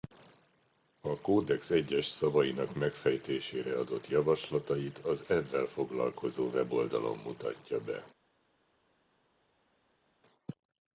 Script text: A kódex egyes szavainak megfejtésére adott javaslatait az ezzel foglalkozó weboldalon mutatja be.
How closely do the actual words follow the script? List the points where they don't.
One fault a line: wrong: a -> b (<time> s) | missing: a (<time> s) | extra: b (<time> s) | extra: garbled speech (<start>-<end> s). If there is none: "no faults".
no faults